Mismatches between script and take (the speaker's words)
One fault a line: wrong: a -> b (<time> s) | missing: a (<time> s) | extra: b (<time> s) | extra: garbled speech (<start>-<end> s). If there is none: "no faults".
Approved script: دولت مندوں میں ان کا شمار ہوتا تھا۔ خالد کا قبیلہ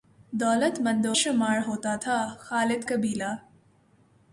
missing: میں ان کا (1.2 s)
missing: کا (2.8 s)